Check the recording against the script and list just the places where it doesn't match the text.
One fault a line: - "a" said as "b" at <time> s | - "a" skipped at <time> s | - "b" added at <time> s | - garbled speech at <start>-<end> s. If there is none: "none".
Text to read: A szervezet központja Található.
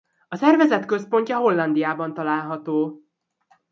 - "Hollandiában" added at 1.4 s